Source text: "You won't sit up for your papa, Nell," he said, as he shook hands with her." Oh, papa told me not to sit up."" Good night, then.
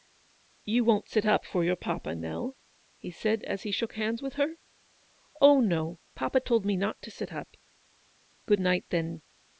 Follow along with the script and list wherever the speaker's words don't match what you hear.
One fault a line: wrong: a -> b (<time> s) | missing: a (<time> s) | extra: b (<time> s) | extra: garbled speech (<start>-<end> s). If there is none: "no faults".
extra: no (5.6 s)